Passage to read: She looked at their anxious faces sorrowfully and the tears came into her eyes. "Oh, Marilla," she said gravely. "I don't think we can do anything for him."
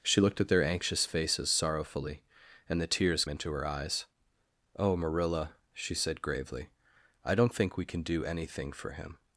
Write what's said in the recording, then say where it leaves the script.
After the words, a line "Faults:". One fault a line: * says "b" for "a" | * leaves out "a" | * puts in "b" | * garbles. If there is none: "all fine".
She looked at their anxious faces sorrowfully and the tears into her eyes. "Oh, Marilla," she said gravely. "I don't think we can do anything for him."
Faults:
* leaves out "came"